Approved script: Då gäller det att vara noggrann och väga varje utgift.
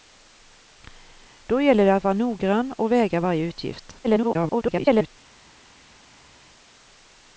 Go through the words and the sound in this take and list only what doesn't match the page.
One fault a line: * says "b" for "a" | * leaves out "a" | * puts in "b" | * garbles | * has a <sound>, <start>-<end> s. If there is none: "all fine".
* garbles